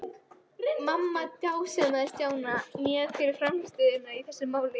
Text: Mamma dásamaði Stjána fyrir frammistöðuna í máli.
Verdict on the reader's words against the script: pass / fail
fail